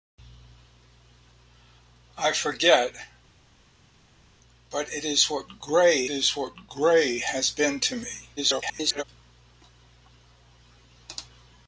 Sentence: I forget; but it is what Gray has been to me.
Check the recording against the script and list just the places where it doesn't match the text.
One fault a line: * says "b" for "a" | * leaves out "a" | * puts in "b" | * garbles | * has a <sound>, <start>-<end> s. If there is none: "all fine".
* puts in "is what Gray"
* garbles